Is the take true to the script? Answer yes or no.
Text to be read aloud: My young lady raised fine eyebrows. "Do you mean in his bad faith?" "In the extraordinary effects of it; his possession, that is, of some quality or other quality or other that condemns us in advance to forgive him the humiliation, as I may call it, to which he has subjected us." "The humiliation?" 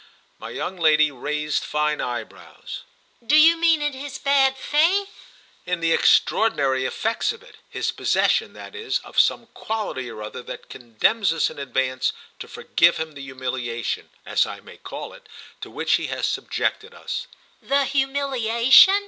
no